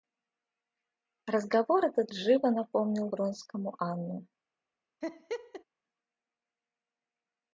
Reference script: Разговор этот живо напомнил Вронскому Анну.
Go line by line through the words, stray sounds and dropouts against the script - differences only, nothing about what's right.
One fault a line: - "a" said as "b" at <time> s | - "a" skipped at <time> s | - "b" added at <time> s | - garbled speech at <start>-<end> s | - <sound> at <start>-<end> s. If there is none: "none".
- laugh at 5.0-5.6 s